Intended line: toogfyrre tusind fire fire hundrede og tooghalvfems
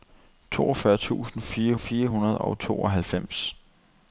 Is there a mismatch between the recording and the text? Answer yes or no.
no